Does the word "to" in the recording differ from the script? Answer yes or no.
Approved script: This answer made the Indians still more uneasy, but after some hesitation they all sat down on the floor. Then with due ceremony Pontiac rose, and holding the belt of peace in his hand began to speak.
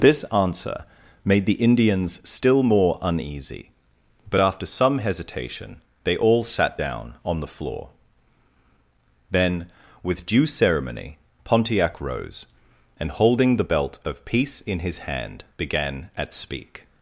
yes